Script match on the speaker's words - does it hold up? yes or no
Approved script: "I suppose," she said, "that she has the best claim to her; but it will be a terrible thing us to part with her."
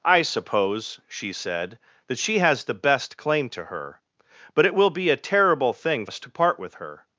yes